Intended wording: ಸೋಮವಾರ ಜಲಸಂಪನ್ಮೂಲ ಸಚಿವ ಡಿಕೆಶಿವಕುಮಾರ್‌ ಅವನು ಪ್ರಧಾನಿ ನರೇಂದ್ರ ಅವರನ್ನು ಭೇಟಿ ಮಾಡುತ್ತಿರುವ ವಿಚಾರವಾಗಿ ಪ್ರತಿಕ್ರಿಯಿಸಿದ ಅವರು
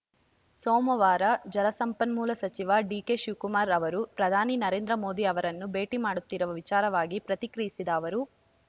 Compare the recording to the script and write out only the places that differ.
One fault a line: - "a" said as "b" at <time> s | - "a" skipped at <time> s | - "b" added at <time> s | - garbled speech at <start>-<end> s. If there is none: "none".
- "ಅವನು" said as "ಅವರು" at 3.8 s
- "ಮೋದಿ" added at 5.0 s